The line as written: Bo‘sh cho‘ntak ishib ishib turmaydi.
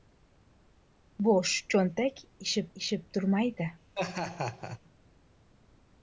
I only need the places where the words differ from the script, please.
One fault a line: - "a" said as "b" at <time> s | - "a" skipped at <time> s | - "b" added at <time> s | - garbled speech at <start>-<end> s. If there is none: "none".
none